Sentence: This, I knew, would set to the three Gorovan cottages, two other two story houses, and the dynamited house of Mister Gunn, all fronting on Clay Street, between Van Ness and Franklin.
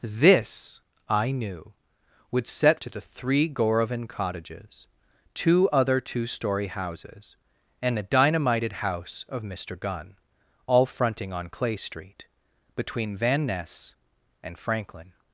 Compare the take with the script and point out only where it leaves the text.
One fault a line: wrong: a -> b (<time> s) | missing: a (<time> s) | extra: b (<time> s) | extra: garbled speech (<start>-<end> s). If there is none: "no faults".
no faults